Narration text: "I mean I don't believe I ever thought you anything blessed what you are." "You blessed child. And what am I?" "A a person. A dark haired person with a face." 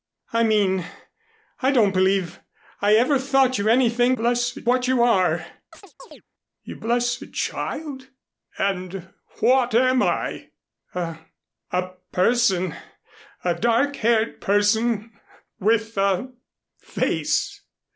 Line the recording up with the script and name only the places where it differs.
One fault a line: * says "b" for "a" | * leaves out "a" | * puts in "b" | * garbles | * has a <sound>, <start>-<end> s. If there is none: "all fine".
* has a chirp, 5.7-6.2 s